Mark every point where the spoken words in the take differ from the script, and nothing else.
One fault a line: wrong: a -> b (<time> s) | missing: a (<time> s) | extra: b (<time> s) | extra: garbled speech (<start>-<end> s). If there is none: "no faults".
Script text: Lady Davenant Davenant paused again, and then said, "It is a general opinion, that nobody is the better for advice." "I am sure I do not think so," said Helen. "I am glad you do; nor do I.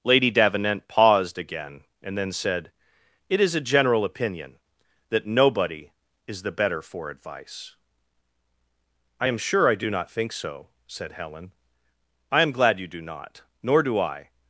missing: Davenant (0.9 s)
extra: not (13.0 s)